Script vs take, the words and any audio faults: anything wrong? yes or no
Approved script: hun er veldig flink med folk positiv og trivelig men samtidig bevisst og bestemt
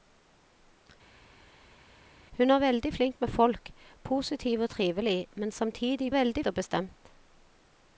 yes